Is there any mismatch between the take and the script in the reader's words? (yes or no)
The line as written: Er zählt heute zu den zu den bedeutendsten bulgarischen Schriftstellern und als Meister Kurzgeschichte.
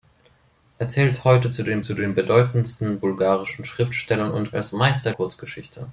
no